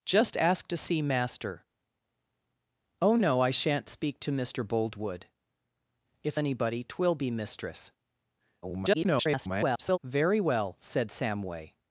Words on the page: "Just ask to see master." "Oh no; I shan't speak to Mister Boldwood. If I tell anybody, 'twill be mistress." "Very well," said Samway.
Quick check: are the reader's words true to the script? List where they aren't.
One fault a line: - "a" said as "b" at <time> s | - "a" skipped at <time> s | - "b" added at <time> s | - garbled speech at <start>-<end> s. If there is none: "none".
- "I tell" skipped at 6.4 s
- garbled speech at 8.6-10.0 s